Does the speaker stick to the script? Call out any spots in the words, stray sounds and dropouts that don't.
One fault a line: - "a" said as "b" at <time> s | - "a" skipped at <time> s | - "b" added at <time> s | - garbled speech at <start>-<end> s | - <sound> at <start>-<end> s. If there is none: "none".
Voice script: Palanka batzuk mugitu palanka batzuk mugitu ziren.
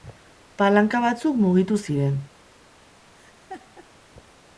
- "palanka batzuk mugitu" skipped at 1.8 s
- laugh at 3.1-3.9 s